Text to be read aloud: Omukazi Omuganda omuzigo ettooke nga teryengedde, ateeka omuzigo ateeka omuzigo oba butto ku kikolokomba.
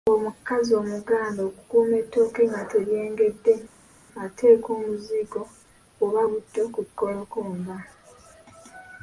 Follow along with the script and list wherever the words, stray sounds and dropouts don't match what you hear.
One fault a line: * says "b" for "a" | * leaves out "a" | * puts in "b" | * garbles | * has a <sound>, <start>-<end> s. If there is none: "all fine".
* says "okukuuma" for "omuzigo"
* leaves out "ateeka omuzigo"